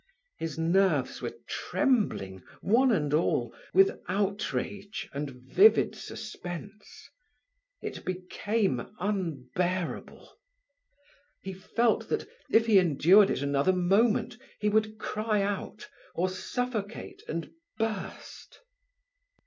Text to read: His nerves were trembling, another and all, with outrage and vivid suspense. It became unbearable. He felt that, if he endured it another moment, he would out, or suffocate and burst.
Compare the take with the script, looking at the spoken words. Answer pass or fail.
fail